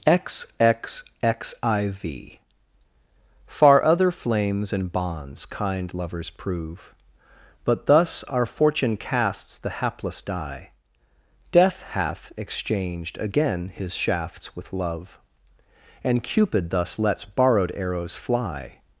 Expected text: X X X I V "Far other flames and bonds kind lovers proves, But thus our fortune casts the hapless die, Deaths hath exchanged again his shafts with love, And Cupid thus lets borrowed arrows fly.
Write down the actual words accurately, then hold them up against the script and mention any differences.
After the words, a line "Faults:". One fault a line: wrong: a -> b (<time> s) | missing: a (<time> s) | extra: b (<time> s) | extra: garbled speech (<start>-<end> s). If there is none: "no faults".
X X X I V "Far other flames and bonds kind lovers prove, But thus our fortune casts the hapless die, Death hath exchanged again his shafts with love, And Cupid thus lets borrowed arrows fly.
Faults:
wrong: proves -> prove (6.3 s)
wrong: Deaths -> Death (11.5 s)